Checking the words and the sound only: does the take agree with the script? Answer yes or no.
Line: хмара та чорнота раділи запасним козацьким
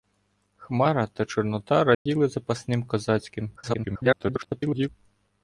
no